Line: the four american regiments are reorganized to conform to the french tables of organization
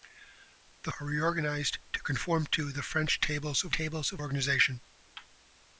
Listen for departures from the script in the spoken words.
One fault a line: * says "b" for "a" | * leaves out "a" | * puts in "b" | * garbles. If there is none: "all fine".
* leaves out "four american regiments"
* puts in "tables of"